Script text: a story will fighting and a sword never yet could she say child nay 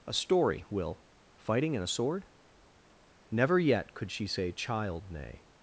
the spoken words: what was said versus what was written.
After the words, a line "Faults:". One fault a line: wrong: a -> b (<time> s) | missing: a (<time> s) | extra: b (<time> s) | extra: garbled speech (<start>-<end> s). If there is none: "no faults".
a story will fighting and a sword never yet could she say child nay
Faults:
no faults